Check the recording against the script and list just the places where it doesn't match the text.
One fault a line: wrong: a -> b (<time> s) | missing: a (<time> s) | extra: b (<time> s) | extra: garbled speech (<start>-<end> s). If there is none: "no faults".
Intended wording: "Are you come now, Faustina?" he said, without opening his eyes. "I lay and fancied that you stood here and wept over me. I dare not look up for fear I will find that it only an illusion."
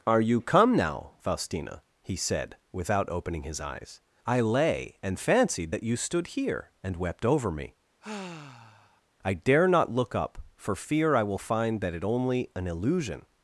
no faults